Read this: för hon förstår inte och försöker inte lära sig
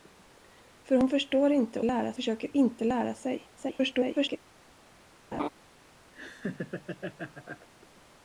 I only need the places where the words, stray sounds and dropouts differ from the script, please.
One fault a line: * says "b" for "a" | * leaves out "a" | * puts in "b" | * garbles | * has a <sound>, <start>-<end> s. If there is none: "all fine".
* says "lära" for "och"
* garbles
* has a laugh, 5.3-5.5 s
* has a laugh, 6.1-7.7 s